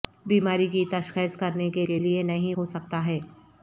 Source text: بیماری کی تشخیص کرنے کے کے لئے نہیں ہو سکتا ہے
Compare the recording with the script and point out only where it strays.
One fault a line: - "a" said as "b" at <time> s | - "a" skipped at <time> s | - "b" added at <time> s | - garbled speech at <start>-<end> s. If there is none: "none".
none